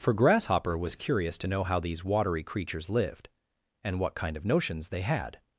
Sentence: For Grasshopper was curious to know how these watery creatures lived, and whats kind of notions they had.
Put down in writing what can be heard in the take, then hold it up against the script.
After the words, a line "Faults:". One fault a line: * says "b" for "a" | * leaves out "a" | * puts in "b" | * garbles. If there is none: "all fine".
For Grasshopper was curious to know how these watery creatures lived, and what kind of notions they had.
Faults:
* says "what" for "whats"